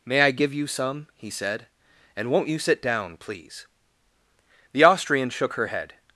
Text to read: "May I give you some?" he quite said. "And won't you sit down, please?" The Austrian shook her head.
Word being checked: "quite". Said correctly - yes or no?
no